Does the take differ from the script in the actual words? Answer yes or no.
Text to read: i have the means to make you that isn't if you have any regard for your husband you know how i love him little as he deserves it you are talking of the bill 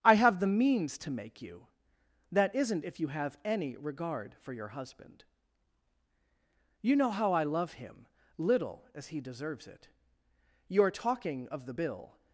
no